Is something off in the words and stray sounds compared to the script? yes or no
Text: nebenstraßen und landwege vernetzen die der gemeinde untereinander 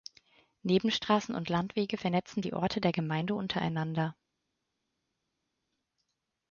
yes